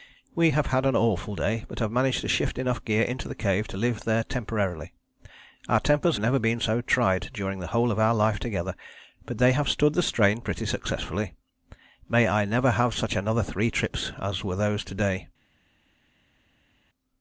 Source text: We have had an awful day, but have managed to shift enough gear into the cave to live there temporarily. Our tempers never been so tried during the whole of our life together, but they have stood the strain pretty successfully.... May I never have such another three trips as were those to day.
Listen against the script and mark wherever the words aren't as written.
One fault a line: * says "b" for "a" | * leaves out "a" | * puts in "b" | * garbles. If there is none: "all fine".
all fine